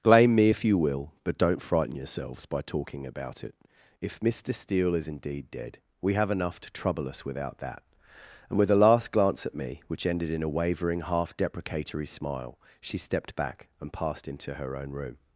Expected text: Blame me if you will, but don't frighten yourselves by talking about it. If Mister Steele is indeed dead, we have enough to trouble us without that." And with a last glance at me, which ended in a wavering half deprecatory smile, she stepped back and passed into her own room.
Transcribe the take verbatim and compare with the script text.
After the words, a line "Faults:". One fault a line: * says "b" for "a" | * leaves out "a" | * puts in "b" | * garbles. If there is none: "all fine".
Blame me if you will, but don't frighten yourselves by talking about it. If Mister Steele is indeed dead, we have enough to trouble us without that." And with a last glance at me, which ended in a wavering half deprecatory smile, she stepped back and passed into her own room.
Faults:
all fine